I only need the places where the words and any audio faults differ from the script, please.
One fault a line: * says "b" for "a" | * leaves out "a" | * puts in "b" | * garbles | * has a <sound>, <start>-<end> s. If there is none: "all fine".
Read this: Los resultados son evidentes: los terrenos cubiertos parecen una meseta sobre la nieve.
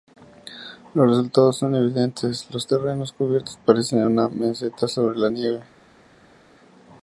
all fine